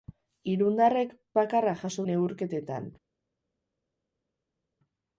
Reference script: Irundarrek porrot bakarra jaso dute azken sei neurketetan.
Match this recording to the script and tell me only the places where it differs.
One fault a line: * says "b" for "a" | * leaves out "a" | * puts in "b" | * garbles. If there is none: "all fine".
* leaves out "porrot"
* leaves out "dute azken sei"